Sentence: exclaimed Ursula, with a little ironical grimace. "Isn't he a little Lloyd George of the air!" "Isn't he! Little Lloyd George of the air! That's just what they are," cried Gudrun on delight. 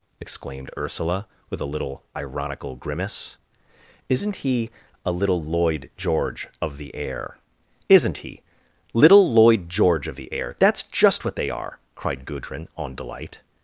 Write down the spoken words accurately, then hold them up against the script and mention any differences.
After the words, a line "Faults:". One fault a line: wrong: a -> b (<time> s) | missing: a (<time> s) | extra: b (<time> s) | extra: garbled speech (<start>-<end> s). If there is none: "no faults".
exclaimed Ursula, with a little ironical grimace. "Isn't he a little Lloyd George of the air!" "Isn't he! Little Lloyd George of the air! That's just what they are," cried Gudrun on delight.
Faults:
no faults